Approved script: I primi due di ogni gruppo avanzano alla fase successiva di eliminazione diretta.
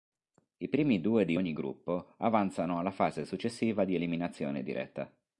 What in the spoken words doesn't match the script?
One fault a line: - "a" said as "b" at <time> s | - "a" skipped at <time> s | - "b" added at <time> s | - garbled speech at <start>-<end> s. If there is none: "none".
none